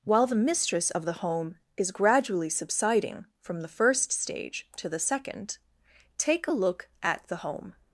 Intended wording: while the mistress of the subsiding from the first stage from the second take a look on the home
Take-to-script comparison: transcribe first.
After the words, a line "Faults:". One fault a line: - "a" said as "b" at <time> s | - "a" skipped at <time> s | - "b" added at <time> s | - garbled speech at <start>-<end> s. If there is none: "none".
while the mistress of the home is gradually subsiding from the first stage to the second take a look at the home
Faults:
- "home is gradually" added at 1.2 s
- "from" said as "to" at 4.8 s
- "on" said as "at" at 7.0 s